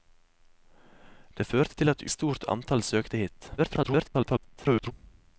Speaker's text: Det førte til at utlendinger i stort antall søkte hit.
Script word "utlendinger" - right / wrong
wrong